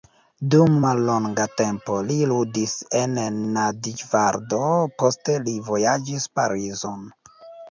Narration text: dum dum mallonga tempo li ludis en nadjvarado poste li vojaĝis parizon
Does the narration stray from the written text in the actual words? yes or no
yes